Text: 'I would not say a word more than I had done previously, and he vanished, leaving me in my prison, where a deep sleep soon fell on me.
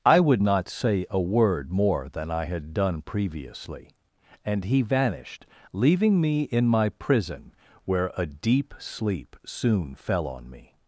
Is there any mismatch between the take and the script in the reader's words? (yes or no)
no